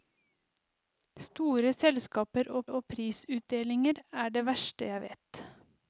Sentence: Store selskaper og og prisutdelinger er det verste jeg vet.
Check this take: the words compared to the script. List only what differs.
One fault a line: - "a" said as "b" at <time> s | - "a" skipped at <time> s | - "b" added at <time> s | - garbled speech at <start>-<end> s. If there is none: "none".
none